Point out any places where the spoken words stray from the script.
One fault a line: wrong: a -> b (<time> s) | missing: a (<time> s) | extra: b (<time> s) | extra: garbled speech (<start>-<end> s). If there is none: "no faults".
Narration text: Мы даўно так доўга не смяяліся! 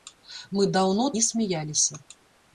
missing: так доўга (1.1 s)